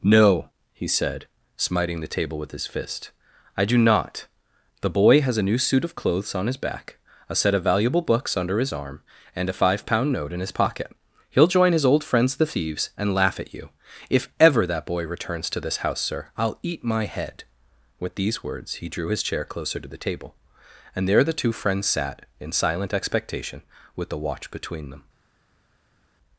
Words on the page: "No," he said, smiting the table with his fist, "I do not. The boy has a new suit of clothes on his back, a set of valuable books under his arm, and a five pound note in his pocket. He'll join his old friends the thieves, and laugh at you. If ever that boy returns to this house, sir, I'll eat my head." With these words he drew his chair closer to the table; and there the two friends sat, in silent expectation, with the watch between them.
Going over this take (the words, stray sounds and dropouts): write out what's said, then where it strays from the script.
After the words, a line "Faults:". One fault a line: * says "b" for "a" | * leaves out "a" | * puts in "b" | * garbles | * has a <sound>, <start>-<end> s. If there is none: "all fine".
"No," he said, smiting the table with his fist, "I do not. The boy has a new suit of clothes on his back, a set of valuable books under his arm, and a five pound note in his pocket. He'll join his old friends the thieves, and laugh at you. If ever that boy returns to this house, sir, I'll eat my head." With these words he drew his chair closer to the table; and there the two friends sat, in silent expectation, with the watch between them.
Faults:
all fine